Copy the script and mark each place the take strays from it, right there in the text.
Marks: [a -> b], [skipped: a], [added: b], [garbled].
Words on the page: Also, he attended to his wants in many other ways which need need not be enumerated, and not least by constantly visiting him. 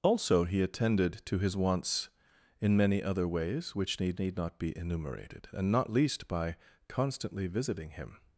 Also, he attended to his wants in many other ways which need need not be enumerated, and not least by constantly visiting him.